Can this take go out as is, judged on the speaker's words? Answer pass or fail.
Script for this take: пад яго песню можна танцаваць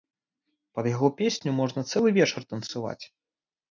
fail